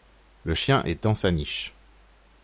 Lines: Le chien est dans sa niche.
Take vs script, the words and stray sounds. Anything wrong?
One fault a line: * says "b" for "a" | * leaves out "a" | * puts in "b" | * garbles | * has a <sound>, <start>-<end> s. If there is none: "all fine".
all fine